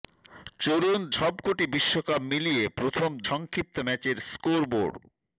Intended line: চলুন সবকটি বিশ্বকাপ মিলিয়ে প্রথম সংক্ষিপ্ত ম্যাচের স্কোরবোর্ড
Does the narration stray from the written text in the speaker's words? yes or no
no